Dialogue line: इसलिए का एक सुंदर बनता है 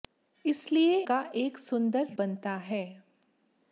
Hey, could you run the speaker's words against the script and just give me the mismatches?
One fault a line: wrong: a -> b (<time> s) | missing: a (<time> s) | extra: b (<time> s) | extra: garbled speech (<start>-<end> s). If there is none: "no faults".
no faults